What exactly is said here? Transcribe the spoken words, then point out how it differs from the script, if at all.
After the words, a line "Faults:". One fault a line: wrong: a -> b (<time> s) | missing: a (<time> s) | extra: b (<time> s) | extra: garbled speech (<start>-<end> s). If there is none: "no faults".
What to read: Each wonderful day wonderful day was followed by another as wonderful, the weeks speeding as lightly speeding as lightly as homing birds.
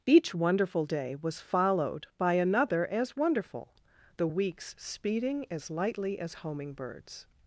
Each wonderful day was followed by another as wonderful, the weeks speeding as lightly as homing birds.
Faults:
missing: wonderful day (1.1 s)
missing: speeding as lightly (6.2 s)